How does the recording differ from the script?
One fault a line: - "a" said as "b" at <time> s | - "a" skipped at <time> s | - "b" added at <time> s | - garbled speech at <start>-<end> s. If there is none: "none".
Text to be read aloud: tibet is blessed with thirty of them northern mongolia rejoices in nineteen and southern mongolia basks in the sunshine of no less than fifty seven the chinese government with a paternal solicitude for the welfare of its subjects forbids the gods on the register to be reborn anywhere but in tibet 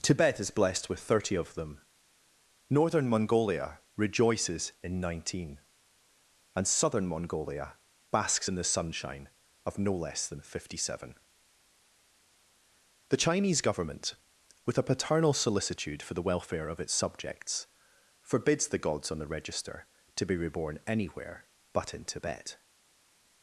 none